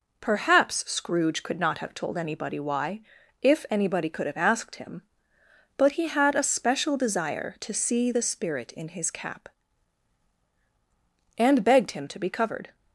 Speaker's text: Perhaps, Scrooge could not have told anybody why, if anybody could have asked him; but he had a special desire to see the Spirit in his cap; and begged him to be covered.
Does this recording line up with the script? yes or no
yes